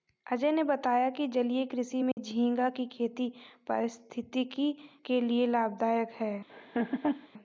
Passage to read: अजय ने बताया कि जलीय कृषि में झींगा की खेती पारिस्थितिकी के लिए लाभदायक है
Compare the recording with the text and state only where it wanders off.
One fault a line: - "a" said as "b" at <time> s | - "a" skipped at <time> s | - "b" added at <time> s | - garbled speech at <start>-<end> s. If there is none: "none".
none